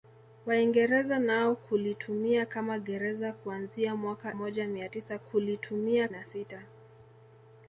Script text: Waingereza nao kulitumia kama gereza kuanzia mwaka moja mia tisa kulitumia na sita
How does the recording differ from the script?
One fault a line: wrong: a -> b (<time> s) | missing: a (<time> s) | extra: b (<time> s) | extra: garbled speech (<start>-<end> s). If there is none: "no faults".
no faults